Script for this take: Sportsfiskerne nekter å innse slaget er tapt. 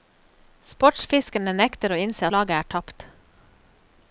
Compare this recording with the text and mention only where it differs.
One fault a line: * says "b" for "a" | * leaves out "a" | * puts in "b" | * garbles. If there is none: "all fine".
all fine